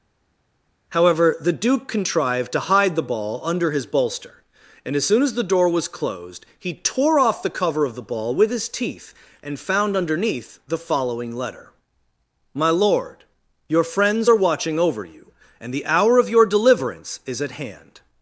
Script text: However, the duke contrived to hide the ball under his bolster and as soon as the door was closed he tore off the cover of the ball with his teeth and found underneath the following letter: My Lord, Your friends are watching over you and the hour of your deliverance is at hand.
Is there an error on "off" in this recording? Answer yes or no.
no